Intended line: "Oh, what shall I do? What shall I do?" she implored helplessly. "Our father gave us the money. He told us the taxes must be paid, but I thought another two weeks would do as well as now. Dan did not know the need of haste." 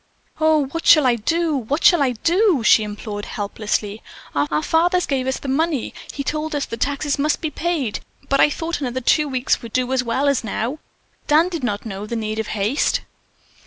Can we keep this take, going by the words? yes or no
no